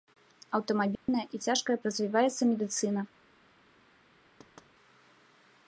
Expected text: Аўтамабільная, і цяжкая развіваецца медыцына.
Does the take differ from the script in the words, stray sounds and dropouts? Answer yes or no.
yes